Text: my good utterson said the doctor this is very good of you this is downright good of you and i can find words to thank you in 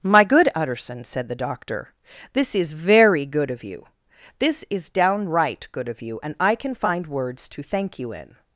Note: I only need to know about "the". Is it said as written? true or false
true